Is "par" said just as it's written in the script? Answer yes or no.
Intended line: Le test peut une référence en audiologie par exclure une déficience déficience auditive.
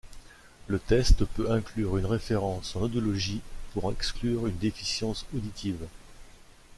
no